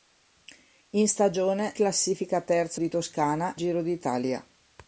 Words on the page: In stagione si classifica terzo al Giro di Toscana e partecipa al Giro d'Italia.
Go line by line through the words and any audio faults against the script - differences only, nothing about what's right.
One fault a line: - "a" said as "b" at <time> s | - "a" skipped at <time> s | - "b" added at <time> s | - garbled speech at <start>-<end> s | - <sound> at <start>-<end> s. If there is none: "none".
- "si" skipped at 1.7 s
- "al Giro" skipped at 2.8 s
- "e partecipa al" skipped at 3.6 s